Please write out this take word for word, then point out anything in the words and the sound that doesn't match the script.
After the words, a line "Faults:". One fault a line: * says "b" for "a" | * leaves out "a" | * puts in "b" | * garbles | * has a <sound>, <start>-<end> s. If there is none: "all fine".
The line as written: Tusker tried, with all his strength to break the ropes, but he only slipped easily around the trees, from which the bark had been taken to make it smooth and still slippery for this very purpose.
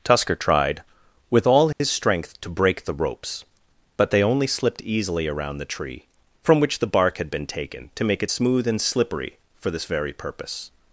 Tusker tried, with all his strength to break the ropes, but they only slipped easily around the tree, from which the bark had been taken to make it smooth and slippery for this very purpose.
Faults:
* has a dropout, 1.7-1.8 s
* says "they" for "he"
* says "tree" for "trees"
* leaves out "still"